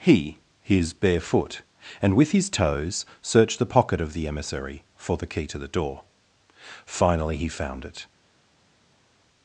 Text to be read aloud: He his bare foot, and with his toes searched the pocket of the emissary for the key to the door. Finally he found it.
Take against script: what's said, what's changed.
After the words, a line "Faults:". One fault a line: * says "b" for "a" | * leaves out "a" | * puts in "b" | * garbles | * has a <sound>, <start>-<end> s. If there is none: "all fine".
He his bare foot, and with his toes searched the pocket of the emissary for the key to the door. Finally he found it.
Faults:
all fine